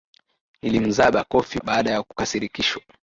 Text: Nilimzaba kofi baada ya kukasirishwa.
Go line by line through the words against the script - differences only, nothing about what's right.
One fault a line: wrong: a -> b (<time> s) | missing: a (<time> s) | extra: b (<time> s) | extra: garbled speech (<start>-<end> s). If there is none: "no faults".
no faults